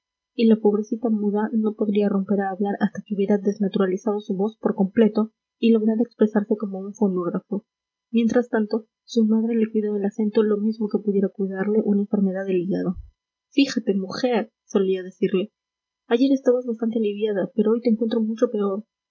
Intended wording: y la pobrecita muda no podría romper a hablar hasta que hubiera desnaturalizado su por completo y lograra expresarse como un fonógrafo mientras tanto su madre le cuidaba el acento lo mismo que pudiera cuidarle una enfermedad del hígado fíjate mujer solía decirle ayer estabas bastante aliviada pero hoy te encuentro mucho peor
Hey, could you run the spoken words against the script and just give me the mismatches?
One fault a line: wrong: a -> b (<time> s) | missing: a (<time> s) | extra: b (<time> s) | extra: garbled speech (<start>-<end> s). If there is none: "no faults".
extra: voz (4.3 s)